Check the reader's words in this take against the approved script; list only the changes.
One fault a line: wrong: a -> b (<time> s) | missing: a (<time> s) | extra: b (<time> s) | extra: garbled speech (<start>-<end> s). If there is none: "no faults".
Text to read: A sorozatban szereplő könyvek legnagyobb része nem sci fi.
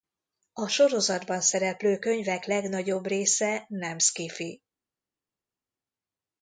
no faults